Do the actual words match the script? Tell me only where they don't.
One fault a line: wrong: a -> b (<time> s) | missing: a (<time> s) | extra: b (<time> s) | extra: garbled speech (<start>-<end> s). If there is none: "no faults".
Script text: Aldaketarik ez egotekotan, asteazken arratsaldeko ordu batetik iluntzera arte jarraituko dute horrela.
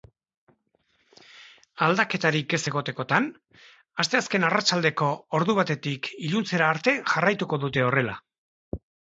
no faults